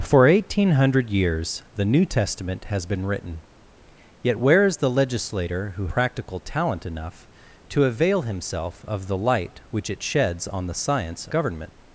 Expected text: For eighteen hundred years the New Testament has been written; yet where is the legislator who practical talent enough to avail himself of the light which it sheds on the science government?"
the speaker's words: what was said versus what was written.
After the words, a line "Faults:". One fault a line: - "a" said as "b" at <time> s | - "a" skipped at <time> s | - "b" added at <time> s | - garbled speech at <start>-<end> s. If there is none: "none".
For eighteen hundred years the New Testament has been written; yet where is the legislator who practical talent enough to avail himself of the light which it sheds on the science government?"
Faults:
none